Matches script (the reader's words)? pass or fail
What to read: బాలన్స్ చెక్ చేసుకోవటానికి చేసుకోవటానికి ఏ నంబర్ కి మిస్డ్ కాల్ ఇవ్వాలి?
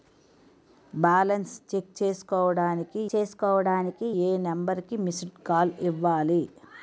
pass